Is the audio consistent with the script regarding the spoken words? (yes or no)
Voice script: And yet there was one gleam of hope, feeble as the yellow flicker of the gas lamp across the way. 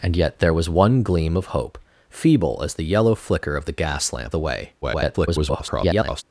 no